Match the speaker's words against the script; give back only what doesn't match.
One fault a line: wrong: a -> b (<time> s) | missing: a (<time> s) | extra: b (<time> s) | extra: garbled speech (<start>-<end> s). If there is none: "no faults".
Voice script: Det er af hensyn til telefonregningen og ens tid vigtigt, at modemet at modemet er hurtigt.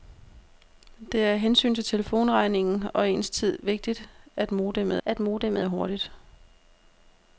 no faults